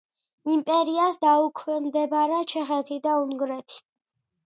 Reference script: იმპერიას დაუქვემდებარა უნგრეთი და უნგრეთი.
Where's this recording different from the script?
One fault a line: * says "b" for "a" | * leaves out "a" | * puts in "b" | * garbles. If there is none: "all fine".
* says "ჩეხეთი" for "უნგრეთი"